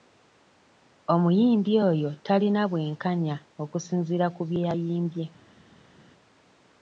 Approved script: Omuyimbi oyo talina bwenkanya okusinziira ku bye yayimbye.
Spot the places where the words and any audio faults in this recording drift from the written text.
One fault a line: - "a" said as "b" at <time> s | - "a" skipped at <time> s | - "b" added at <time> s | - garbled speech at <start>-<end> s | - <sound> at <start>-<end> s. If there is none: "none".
none